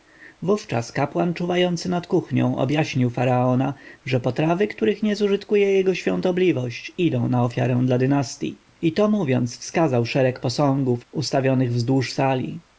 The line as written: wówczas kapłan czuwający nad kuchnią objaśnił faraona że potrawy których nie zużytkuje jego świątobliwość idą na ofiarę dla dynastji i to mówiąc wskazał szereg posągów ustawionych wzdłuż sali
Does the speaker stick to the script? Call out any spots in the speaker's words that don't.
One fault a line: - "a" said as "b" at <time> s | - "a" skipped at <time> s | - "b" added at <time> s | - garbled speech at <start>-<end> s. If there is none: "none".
none